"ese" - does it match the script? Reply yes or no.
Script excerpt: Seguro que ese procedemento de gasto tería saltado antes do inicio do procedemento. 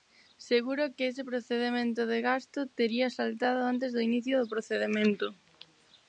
yes